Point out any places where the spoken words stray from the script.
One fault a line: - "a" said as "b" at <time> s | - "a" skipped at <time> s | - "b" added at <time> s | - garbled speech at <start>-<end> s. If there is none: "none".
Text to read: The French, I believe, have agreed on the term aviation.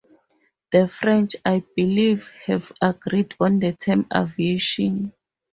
none